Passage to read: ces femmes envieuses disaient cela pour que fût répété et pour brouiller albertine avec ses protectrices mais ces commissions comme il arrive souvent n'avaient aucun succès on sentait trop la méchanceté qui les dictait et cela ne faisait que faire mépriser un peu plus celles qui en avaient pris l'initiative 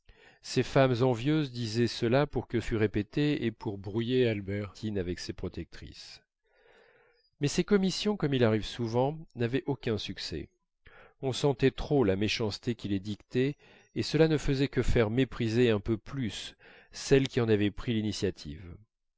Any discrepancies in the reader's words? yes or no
no